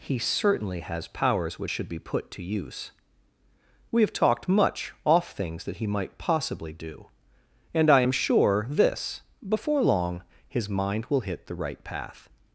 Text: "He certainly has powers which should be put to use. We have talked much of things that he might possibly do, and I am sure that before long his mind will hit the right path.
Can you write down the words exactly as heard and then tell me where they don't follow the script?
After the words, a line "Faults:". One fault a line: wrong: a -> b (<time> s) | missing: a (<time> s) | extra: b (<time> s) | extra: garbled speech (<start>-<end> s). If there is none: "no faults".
"He certainly has powers which should be put to use. We have talked much off things that he might possibly do, and I am sure this before long his mind will hit the right path.
Faults:
wrong: of -> off (5.0 s)
wrong: that -> this (8.7 s)